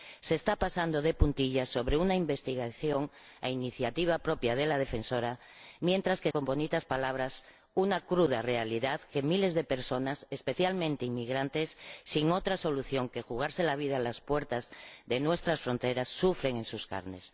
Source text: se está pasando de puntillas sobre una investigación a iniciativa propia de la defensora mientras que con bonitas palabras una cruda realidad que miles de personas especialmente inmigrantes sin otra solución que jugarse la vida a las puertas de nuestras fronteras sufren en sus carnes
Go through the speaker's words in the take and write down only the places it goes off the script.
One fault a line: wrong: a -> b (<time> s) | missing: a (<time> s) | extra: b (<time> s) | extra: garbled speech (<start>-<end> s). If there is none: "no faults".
no faults